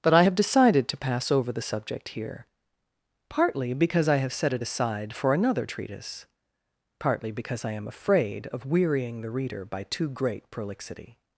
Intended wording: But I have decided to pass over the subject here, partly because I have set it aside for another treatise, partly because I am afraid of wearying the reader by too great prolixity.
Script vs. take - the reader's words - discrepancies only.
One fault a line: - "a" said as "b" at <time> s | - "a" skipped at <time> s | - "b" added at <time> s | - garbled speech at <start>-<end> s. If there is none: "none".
none